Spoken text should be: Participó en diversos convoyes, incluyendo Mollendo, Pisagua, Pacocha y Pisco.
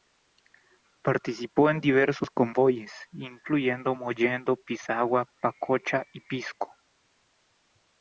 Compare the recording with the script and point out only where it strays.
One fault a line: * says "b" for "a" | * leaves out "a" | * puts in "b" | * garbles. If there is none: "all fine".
all fine